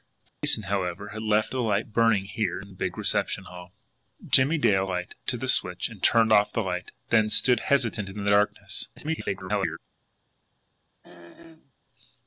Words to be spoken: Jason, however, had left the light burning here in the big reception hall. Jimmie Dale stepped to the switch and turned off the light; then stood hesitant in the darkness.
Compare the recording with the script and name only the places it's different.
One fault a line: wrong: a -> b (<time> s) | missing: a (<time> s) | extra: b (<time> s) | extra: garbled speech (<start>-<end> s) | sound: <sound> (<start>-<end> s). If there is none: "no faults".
sound: dropout (0.3-0.4 s)
wrong: stepped -> light (4.9 s)
extra: garbled speech (9.0-9.8 s)
sound: throat clearing (11.0-11.7 s)